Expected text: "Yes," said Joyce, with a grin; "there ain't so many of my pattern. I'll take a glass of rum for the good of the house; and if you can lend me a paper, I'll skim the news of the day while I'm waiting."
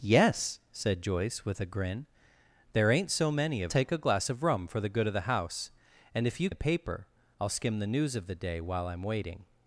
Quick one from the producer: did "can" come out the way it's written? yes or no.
no